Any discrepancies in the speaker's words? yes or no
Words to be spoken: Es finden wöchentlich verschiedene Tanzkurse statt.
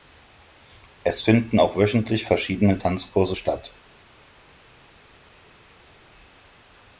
yes